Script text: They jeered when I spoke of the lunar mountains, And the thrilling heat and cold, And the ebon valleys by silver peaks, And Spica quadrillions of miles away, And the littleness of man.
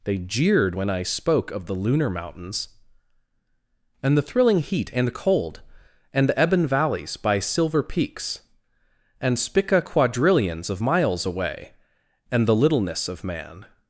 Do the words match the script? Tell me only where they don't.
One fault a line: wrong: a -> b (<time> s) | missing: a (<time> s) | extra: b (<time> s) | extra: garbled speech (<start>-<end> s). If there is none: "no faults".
no faults